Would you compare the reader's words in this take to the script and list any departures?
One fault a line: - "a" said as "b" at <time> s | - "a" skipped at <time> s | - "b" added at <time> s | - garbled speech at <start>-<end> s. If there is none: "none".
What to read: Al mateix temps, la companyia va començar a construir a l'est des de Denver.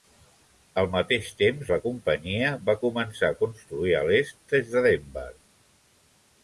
none